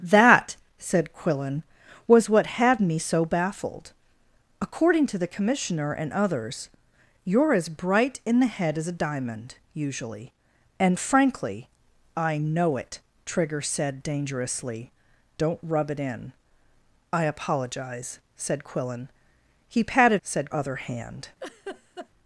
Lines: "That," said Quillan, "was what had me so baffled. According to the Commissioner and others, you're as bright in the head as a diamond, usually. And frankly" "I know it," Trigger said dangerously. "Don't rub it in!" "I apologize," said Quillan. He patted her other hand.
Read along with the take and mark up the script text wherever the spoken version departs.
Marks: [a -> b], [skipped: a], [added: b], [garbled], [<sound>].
"That," said Quillan, "was what had me so baffled. According to the Commissioner and others, you're as bright in the head as a diamond, usually. And frankly" "I know it," Trigger said dangerously. "Don't rub it in!" "I apologize," said Quillan. He patted [her -> said] other hand. [laugh]